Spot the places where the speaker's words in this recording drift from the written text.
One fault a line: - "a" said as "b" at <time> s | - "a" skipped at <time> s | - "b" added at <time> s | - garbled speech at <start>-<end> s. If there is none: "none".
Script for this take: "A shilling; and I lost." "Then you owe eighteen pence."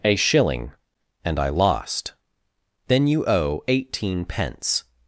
none